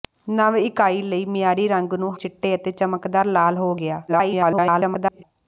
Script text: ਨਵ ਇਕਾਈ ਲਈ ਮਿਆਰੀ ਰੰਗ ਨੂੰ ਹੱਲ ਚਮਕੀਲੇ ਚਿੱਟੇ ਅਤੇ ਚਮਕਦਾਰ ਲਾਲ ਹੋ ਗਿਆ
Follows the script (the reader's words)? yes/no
no